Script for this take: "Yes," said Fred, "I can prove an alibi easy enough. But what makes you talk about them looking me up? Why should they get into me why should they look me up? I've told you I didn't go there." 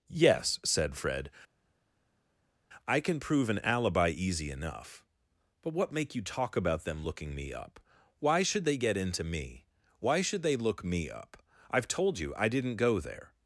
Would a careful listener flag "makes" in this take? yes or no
yes